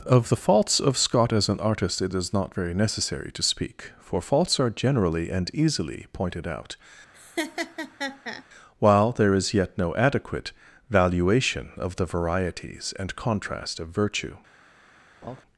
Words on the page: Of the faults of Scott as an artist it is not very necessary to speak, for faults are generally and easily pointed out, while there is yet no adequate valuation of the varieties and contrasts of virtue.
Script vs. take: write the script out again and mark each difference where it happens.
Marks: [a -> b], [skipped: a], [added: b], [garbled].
Of the faults of Scott as an artist it is not very necessary to speak, for faults are generally and easily pointed out, while there is yet no adequate valuation of the varieties and [contrasts -> contrast] of virtue.